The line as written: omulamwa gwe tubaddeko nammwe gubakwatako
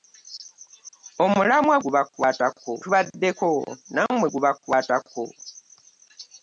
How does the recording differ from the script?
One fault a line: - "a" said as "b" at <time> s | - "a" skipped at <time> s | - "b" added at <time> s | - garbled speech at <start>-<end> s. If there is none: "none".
- "gwe" said as "gubakwatako" at 1.8 s